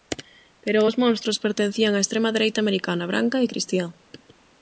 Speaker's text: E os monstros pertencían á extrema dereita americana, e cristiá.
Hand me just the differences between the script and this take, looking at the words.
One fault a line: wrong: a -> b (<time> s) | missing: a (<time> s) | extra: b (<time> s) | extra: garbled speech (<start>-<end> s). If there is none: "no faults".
wrong: E -> Pero (0.6 s)
extra: branca (3.1 s)